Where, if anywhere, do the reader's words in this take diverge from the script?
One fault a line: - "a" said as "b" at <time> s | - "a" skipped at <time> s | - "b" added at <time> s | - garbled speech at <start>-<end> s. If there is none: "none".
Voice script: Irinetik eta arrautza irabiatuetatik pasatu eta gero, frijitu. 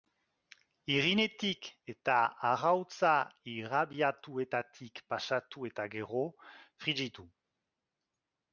none